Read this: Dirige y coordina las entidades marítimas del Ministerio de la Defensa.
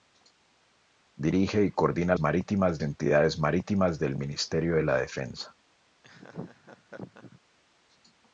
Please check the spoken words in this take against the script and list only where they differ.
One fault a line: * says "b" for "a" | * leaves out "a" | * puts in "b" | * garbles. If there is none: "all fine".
* says "marítimas" for "las"